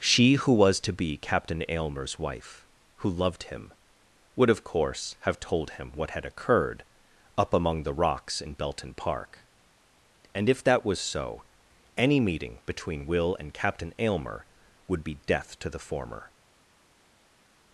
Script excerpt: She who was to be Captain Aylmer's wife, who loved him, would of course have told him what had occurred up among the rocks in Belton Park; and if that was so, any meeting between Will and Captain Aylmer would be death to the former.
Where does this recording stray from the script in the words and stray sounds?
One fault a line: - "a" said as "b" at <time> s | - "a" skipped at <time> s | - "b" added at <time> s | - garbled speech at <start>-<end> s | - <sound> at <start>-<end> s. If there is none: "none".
none